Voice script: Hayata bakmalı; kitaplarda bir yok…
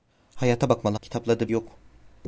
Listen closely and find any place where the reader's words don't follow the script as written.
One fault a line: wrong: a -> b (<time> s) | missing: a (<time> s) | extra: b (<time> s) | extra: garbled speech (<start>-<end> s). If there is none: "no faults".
no faults